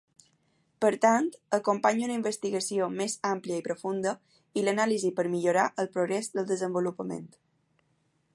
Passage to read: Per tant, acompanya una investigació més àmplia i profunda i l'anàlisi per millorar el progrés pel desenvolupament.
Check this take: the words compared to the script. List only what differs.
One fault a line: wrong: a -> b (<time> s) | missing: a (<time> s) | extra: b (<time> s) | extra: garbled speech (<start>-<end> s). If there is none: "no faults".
wrong: pel -> del (6.4 s)